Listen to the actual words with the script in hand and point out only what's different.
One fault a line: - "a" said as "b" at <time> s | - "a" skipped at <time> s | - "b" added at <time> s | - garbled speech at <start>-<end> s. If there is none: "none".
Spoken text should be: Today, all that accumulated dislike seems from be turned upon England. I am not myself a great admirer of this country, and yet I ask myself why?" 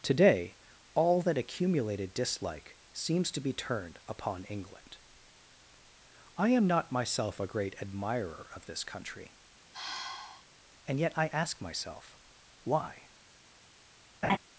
- "from" said as "to" at 3.3 s